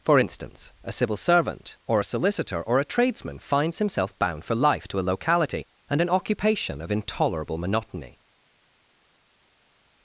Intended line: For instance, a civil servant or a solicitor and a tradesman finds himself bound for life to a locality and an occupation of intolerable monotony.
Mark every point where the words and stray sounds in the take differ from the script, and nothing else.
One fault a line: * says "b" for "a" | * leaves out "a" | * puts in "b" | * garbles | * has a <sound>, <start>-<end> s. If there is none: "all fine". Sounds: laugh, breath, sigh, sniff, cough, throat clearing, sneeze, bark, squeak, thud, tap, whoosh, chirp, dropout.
* says "or" for "and"